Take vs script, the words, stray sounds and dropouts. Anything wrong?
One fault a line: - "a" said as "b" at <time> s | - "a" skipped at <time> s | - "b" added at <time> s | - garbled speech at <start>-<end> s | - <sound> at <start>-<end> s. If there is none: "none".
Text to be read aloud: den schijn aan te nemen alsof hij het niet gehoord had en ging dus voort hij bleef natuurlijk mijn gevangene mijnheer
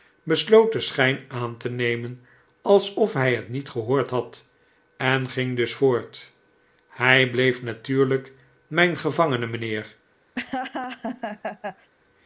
- laugh at 10.3-11.9 s